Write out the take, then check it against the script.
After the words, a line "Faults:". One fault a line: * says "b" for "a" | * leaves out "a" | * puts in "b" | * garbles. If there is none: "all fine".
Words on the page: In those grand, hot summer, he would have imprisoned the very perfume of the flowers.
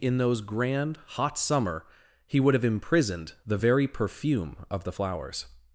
In those grand, hot summer, he would have imprisoned the very perfume of the flowers.
Faults:
all fine